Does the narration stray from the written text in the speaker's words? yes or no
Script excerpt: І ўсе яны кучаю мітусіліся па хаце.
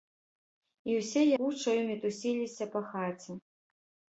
yes